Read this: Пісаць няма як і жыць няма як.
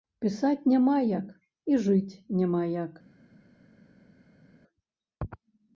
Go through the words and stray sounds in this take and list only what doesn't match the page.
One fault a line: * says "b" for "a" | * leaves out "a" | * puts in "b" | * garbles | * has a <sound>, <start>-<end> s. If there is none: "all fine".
all fine